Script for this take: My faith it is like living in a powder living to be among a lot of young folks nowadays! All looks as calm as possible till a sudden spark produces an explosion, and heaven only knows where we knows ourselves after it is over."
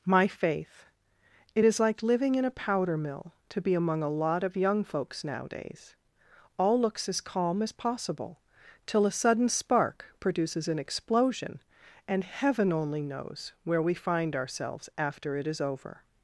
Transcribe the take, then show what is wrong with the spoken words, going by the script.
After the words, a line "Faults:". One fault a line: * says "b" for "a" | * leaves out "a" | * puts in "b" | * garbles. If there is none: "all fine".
My faith it is like living in a powder mill to be among a lot of young folks nowadays! All looks as calm as possible till a sudden spark produces an explosion, and heaven only knows where we find ourselves after it is over."
Faults:
* says "mill" for "living"
* says "find" for "knows"